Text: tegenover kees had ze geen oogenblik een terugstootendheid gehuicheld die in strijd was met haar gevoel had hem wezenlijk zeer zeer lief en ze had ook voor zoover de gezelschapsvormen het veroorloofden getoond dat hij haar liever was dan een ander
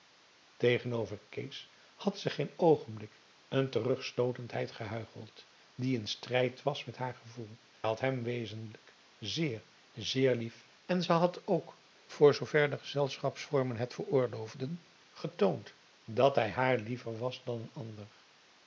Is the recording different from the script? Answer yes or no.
no